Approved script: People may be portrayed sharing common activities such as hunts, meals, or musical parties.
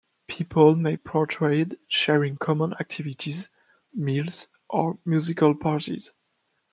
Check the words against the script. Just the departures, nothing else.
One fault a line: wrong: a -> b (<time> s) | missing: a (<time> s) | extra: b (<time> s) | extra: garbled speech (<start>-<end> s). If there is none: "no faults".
missing: be (0.9 s)
missing: such as hunts (3.5 s)